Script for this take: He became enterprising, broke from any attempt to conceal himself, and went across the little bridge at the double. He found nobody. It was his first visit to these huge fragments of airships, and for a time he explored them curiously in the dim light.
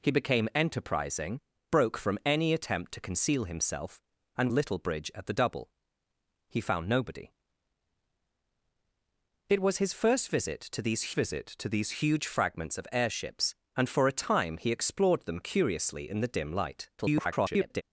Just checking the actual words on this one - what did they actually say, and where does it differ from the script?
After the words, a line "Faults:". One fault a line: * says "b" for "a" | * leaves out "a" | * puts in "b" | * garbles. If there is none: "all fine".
He became enterprising, broke from any attempt to conceal himself, and little bridge at the double. He found nobody. It was his first visit to these visit to these huge fragments of airships, and for a time he explored them curiously in the dim light. [garbled]
Faults:
* leaves out "went across the"
* puts in "visit to these"
* garbles